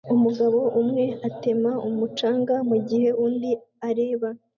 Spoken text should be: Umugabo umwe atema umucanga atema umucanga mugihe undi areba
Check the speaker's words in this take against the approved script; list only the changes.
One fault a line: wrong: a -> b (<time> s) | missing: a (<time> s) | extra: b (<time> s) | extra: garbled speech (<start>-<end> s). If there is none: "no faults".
missing: atema umucanga (2.5 s)